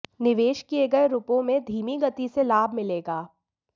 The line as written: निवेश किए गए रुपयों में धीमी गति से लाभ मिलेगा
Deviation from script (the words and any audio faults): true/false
false